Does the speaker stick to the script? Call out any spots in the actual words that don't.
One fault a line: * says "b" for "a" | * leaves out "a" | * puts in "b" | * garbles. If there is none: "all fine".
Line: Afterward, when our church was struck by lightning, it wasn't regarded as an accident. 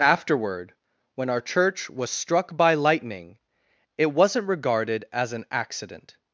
all fine